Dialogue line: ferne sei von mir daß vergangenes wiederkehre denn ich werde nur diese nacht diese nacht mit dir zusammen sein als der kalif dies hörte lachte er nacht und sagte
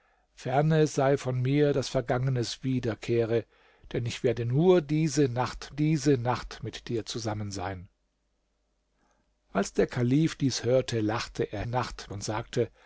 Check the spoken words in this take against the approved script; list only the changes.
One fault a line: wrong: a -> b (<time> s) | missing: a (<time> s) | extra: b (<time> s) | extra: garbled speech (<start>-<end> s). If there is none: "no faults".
no faults